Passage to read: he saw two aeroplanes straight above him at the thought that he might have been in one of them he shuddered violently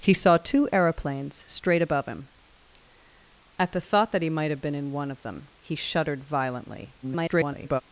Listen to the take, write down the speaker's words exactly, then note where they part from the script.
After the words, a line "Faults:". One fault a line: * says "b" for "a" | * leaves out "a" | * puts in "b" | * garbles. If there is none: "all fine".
he saw two aeroplanes straight above him at the thought that he might have been in one of them he shuddered violently [garbled]
Faults:
* garbles